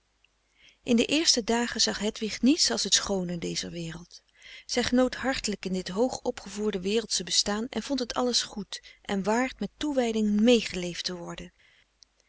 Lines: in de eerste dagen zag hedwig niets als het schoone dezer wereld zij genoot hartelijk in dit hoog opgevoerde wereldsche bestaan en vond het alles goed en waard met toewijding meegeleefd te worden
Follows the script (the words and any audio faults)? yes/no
yes